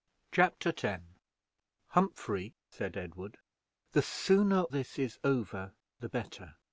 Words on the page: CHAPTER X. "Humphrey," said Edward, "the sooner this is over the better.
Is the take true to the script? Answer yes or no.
yes